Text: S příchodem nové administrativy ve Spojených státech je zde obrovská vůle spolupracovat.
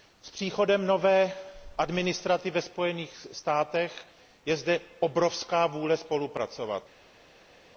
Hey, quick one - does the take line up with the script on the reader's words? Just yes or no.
yes